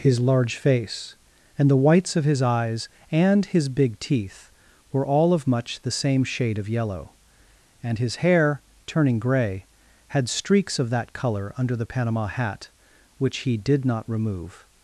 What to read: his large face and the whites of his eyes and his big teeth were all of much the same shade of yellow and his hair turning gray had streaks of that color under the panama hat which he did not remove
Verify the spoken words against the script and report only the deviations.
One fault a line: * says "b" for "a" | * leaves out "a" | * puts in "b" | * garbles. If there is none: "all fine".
all fine